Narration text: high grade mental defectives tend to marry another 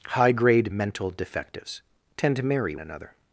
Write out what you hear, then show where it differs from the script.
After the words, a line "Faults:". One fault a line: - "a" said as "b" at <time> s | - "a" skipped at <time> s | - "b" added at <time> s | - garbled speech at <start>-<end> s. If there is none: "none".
high grade mental defectives tend to marry another
Faults:
none